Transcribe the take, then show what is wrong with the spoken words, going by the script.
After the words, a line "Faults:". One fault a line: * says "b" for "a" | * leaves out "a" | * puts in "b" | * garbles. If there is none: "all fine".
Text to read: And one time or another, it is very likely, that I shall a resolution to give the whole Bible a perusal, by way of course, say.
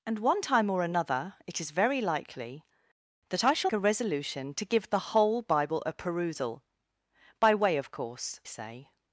And one time or another, it is very likely, that I shall a resolution to give the whole Bible a perusal, by way of course, say.
Faults:
all fine